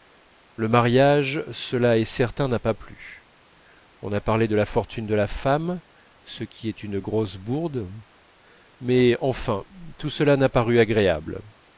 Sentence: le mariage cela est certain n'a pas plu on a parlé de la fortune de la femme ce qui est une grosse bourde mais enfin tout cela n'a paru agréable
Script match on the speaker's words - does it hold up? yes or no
yes